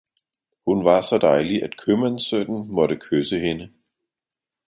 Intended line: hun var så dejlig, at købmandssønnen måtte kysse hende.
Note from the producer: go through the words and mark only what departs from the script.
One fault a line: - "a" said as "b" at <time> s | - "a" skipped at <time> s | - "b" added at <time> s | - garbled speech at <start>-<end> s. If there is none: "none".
none